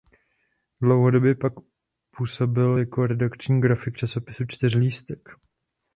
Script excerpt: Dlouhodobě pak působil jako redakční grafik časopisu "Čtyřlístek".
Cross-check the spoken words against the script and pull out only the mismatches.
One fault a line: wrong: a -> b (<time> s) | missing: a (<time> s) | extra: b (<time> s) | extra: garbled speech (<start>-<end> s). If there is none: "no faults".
no faults